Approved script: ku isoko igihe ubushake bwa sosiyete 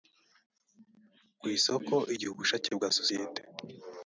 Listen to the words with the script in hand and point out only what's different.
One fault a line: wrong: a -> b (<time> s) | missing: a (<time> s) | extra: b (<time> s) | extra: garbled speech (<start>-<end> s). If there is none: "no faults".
no faults